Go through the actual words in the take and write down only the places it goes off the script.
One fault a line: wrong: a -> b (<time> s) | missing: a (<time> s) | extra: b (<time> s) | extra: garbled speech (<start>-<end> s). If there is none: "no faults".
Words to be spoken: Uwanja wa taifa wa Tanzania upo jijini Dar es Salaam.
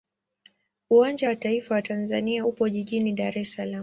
no faults